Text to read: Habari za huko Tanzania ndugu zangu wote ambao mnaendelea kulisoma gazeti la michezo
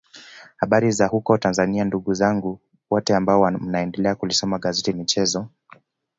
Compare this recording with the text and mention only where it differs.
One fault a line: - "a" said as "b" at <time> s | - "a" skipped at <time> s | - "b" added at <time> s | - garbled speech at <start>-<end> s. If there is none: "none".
- "la" skipped at 4.9 s